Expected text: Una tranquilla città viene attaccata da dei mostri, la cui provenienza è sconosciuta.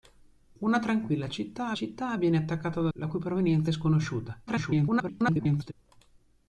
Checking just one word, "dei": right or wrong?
wrong